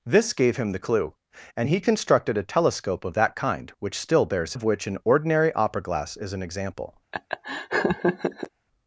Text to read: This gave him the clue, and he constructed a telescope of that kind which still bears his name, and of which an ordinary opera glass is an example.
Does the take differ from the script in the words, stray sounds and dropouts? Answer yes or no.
yes